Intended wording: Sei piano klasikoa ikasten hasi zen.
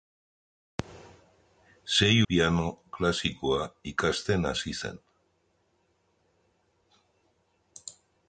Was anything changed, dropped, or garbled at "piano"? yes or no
no